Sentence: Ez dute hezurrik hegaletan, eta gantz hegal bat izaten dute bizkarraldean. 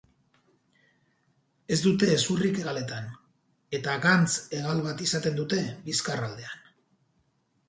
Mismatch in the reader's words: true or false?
false